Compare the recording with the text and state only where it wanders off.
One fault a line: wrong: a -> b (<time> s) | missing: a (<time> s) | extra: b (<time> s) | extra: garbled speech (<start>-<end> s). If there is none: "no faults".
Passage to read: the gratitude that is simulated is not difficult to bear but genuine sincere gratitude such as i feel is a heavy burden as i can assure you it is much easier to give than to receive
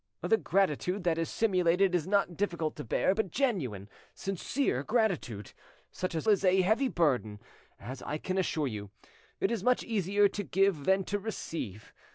missing: i feel (6.3 s)